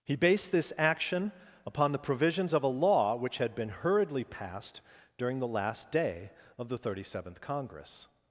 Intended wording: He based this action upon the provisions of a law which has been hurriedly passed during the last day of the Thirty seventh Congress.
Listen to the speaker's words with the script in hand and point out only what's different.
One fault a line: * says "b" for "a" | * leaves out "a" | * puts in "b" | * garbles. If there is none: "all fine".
* says "had" for "has"